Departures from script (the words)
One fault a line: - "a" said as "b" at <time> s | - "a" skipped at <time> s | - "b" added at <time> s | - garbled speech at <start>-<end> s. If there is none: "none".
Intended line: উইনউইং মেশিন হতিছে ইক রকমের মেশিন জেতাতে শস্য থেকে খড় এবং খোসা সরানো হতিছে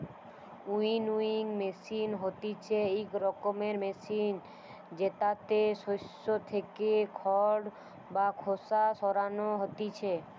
- "এবং" said as "বা" at 8.1 s